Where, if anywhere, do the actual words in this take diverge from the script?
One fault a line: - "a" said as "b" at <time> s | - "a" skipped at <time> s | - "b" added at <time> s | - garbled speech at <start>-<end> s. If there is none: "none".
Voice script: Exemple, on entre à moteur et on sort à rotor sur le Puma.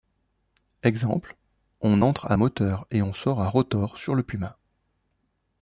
none